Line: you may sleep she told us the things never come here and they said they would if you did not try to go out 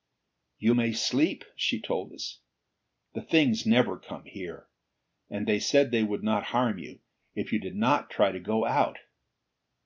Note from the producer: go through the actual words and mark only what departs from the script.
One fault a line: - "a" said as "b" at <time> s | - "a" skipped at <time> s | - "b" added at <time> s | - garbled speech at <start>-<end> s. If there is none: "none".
- "not harm you" added at 6.2 s